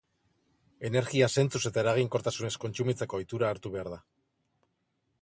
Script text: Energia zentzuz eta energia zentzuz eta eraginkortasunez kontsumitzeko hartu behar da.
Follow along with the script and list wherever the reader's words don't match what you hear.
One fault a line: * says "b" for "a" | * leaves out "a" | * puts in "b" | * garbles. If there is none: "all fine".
* leaves out "energia zentzuz eta"
* puts in "ohitura"